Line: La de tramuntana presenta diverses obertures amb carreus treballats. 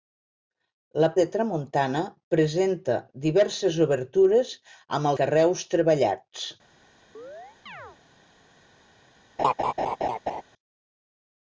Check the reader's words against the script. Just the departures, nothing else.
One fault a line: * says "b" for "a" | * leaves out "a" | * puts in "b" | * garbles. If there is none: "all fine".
all fine